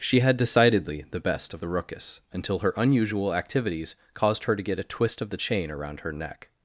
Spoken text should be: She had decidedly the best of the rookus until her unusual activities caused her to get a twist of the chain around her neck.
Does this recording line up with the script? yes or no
yes